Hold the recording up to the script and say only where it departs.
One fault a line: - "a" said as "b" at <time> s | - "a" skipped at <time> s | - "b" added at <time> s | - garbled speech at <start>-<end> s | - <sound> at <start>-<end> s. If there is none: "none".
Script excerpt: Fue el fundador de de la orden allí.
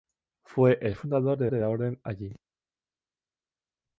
none